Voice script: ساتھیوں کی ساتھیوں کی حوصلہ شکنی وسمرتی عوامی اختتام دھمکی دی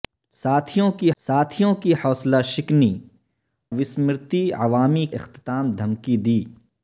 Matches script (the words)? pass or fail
pass